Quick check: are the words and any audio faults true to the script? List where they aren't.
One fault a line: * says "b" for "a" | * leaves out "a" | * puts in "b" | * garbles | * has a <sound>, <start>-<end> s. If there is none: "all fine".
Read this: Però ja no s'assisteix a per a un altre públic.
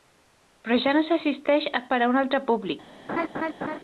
* has a laugh, 3.1-3.8 s